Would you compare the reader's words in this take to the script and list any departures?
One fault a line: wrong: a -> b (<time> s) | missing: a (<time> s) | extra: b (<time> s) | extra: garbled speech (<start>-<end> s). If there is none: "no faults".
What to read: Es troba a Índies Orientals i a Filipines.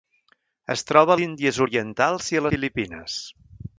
no faults